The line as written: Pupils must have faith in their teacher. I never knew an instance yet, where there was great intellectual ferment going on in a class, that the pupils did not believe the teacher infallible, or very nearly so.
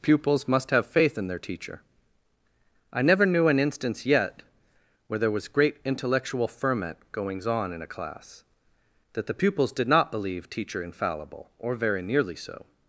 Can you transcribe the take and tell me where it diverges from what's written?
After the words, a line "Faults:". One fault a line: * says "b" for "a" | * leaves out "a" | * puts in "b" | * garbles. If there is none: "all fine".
Pupils must have faith in their teacher. I never knew an instance yet, where there was great intellectual ferment goings on in a class, that the pupils did not believe teacher infallible, or very nearly so.
Faults:
* says "goings" for "going"
* leaves out "the"